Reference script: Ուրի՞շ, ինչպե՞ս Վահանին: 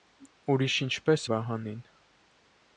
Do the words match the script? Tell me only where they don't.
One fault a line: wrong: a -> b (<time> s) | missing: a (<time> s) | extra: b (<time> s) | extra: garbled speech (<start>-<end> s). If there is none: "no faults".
no faults